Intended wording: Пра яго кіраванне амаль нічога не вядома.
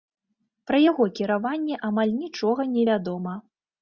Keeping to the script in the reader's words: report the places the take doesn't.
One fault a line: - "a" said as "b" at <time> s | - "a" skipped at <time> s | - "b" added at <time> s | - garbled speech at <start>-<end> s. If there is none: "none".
none